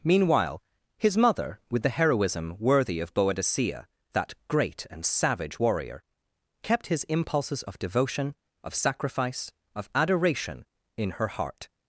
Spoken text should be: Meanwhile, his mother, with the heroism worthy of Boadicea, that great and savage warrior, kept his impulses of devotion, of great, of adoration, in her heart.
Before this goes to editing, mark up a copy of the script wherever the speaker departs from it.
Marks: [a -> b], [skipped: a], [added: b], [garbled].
Meanwhile, his mother, with the heroism worthy of Boadicea, that great and savage warrior, kept his impulses of devotion, of [great, -> sacrifice] of adoration, in her heart.